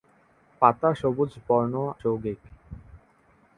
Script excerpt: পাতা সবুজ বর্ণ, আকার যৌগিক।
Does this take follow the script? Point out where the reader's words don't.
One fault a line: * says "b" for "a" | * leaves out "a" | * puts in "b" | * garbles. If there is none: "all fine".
* leaves out "আকার"